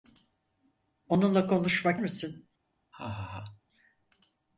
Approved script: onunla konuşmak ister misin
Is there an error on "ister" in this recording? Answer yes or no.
yes